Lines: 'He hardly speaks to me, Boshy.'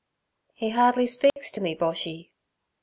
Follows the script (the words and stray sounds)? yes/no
no